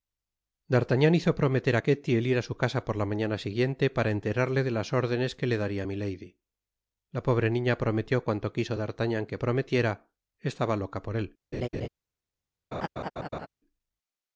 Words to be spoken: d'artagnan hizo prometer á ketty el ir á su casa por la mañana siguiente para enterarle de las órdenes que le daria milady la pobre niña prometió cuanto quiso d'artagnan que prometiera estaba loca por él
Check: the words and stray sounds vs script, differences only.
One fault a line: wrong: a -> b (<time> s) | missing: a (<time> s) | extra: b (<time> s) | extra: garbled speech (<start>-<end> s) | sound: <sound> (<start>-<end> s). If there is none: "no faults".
sound: laugh (11.5-11.9 s)
sound: laugh (12.7-13.5 s)